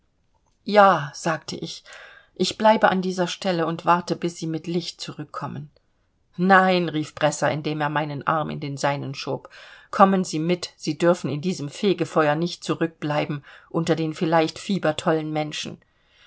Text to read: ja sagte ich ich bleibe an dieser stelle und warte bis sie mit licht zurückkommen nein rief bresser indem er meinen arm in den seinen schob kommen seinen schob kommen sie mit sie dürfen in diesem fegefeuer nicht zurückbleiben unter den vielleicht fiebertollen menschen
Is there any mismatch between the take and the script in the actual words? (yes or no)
yes